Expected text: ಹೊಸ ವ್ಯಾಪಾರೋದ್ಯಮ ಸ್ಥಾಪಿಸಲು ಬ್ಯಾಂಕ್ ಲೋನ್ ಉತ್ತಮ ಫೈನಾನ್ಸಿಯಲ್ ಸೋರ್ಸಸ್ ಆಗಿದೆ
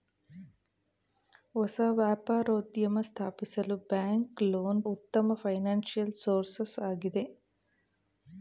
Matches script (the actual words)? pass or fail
pass